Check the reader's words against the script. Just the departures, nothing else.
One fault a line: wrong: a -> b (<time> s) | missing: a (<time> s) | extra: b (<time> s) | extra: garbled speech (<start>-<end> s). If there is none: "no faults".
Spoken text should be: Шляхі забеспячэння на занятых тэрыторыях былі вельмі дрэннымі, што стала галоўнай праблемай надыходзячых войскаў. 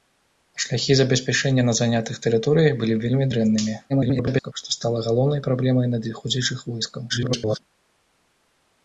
extra: garbled speech (3.9-4.5 s)
extra: garbled speech (7.1-7.6 s)